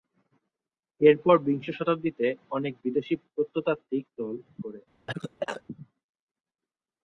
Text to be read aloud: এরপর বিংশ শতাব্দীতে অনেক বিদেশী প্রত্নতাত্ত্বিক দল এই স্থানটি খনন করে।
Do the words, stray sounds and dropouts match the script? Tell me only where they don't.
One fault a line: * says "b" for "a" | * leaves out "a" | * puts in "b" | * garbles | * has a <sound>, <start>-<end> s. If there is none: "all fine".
* leaves out "এই স্থানটি খনন"
* has a cough, 5.1-5.6 s